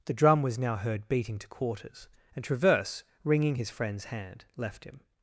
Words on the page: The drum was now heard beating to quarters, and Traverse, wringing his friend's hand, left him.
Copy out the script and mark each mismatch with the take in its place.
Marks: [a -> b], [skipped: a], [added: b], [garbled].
The drum was now heard beating to quarters, and Traverse, wringing his friend's hand, left him.